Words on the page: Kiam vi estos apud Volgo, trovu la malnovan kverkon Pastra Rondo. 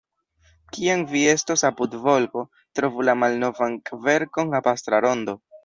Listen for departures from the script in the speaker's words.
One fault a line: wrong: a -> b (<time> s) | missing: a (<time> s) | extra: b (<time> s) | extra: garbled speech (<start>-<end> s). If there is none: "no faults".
no faults